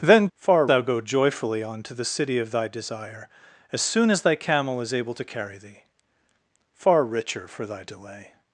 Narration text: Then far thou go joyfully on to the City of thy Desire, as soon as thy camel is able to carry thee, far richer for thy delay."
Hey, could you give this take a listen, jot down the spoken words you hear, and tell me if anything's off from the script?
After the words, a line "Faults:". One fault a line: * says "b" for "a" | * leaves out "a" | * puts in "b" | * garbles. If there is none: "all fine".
Then far thou go joyfully on to the City of thy Desire, as soon as thy camel is able to carry thee, far richer for thy delay."
Faults:
all fine